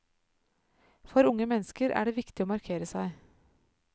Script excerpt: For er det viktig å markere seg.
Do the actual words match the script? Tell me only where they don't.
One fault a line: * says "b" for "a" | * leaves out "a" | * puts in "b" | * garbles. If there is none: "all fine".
* puts in "unge mennesker"